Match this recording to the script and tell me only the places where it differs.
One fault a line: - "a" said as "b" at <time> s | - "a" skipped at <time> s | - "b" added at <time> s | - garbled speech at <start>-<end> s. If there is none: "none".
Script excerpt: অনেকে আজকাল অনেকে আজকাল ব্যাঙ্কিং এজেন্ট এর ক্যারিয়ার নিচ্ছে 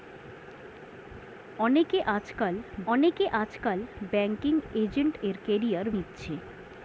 none